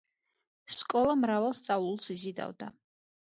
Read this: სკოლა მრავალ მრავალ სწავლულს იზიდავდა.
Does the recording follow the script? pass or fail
fail